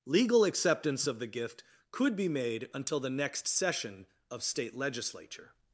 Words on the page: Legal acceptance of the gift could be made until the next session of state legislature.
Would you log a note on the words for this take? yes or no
no